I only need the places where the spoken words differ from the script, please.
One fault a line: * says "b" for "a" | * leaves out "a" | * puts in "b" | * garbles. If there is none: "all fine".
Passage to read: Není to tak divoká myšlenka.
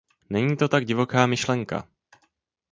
all fine